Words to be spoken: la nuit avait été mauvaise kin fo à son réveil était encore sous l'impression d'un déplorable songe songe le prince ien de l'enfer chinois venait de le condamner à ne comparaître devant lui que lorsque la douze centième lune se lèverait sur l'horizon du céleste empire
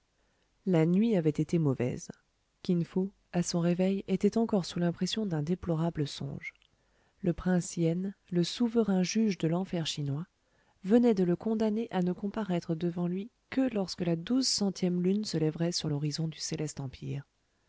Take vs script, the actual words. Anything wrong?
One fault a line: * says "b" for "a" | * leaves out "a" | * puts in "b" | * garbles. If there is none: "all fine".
* leaves out "songe"
* puts in "le souverain juge"